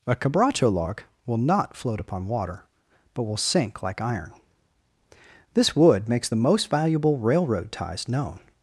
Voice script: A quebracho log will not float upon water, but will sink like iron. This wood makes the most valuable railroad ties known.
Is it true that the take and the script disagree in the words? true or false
false